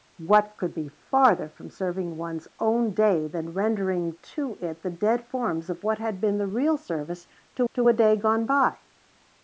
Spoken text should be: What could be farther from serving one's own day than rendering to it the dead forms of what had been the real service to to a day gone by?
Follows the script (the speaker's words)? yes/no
yes